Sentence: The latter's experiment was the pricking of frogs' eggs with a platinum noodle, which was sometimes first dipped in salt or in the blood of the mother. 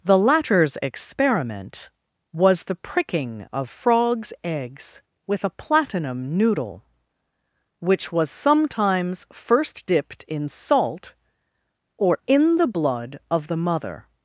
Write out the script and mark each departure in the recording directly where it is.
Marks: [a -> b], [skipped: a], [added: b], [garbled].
The latter's experiment was the pricking of frogs' eggs with a platinum noodle, which was sometimes first dipped in salt or in the blood of the mother.